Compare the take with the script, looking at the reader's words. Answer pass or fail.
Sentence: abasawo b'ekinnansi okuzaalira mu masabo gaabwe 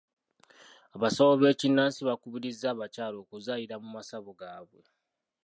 fail